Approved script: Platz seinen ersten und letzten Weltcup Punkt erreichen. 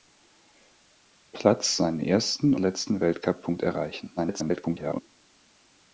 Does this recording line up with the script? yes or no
no